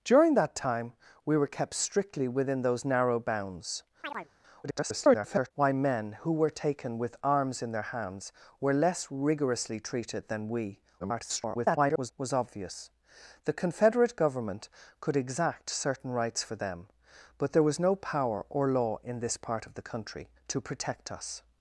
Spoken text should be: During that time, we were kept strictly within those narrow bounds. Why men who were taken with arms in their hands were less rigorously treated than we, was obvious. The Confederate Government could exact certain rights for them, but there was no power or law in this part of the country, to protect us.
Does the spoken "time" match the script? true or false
true